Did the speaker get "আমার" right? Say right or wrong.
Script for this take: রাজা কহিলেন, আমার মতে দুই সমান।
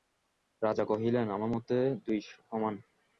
right